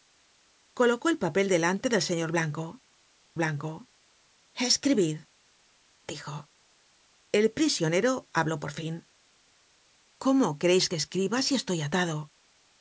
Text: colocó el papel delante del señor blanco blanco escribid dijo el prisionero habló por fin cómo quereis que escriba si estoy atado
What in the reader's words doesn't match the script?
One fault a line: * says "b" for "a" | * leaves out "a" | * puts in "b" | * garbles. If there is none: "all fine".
all fine